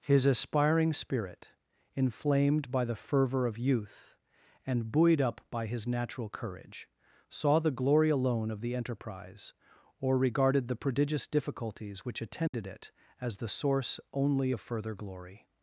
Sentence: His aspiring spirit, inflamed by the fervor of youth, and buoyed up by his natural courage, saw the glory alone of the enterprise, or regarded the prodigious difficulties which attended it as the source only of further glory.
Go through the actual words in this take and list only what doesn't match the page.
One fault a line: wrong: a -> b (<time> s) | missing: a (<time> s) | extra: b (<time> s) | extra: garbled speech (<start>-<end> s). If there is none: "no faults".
no faults